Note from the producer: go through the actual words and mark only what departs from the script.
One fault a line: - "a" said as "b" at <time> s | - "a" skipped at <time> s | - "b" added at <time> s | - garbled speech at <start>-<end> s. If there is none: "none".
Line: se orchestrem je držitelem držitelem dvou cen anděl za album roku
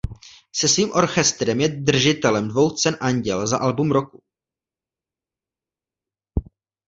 - "svým" added at 0.7 s
- "držitelem" skipped at 2.5 s